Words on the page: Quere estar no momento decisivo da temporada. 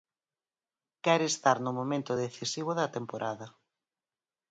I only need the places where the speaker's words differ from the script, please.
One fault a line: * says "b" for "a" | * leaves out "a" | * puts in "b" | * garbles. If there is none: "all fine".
all fine